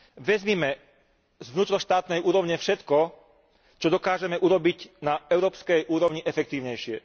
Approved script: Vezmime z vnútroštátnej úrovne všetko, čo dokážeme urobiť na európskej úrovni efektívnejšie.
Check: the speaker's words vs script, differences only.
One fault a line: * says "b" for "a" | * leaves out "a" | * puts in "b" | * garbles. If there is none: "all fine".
all fine